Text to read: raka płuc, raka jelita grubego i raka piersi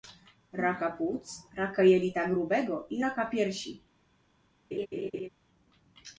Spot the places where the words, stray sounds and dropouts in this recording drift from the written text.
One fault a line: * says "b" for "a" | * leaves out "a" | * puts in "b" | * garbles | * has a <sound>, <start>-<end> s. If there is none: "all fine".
* has a laugh, 4.7-5.3 s